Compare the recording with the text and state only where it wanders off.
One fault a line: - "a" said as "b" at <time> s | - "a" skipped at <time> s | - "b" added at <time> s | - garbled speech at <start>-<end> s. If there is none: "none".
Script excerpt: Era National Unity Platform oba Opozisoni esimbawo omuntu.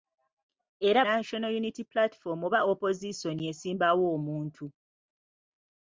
none